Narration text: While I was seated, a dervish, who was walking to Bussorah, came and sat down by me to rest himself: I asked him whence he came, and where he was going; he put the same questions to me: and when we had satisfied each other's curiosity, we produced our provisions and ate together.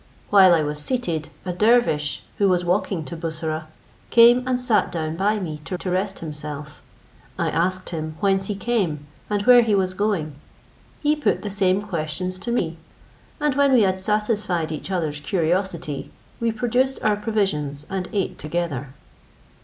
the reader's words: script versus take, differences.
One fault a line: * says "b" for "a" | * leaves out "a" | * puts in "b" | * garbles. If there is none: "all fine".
* puts in "to"